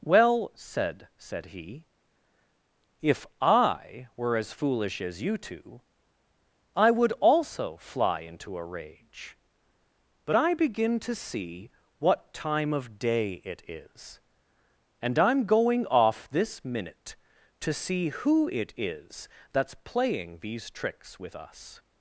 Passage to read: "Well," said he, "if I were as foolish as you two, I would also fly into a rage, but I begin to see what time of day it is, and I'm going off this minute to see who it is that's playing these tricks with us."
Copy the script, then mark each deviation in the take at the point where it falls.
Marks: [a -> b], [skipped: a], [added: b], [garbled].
"Well," said [added: said] he, "if I were as foolish as you two, I would also fly into a rage, but I begin to see what time of day it is, and I'm going off this minute to see who it is that's playing these tricks with us."